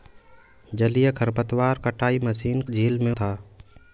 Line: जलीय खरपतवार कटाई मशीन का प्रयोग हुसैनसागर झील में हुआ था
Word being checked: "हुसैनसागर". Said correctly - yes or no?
no